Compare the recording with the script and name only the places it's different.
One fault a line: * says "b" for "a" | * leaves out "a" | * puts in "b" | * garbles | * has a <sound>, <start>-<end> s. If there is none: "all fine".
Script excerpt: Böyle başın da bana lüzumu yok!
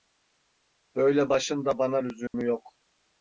* has a dropout, 2.3-2.3 s